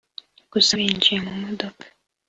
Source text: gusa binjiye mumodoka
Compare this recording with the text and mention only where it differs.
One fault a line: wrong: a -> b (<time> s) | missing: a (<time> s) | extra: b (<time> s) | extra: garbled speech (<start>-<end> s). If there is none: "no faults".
no faults